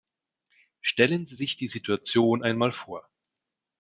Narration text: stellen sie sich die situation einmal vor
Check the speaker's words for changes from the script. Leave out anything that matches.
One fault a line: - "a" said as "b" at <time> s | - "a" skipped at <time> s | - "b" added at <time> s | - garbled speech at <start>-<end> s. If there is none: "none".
none